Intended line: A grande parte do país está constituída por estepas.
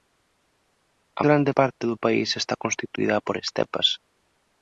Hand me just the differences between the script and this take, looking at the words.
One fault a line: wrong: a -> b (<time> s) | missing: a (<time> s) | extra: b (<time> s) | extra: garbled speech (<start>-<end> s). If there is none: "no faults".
no faults